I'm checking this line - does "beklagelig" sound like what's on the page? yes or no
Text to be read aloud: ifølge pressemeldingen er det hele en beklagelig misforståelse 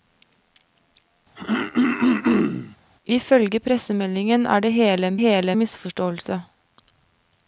no